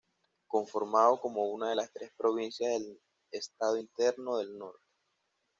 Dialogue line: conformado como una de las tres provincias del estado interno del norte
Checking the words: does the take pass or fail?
pass